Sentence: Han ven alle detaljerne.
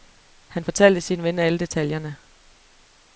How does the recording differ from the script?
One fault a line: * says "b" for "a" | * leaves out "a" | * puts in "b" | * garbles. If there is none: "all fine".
* puts in "fortalte sin"